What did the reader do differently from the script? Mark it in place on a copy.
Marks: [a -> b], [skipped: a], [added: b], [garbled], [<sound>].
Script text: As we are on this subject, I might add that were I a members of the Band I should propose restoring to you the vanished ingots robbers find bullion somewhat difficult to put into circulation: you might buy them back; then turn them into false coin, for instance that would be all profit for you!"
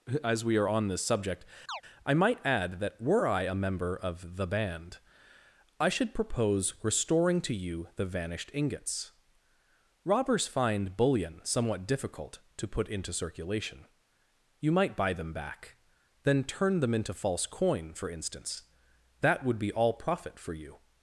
As we are on this subject, [chirp] I might add that were I a [members -> member] of the Band I should propose restoring to you the vanished ingots robbers find bullion somewhat difficult to put into circulation: you might buy them back; then turn them into false coin, for instance that would be all profit for you!"